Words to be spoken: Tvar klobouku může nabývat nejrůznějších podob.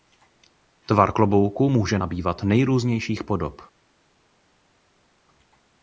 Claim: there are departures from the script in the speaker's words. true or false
false